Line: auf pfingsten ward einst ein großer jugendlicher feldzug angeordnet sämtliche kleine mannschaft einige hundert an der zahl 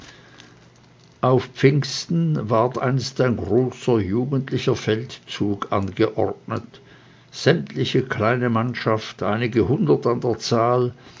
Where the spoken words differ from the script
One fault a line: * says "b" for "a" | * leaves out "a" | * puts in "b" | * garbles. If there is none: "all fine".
all fine